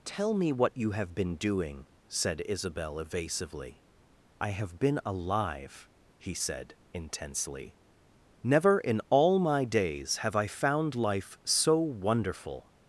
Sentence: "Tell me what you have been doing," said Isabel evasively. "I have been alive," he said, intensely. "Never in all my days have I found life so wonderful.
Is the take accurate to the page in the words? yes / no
yes